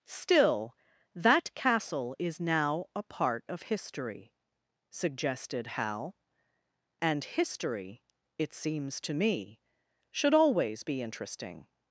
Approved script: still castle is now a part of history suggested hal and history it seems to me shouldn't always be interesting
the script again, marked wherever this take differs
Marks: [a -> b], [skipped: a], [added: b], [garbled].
still [added: that] castle is now a part of history suggested hal and history it seems to me [shouldn't -> should] always be interesting